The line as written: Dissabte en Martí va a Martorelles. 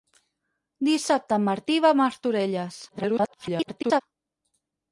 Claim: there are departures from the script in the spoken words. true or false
true